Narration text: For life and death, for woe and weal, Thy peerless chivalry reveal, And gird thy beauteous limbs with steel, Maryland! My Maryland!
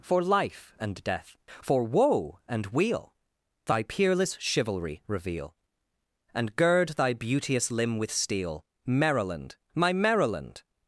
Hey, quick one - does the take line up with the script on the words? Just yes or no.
no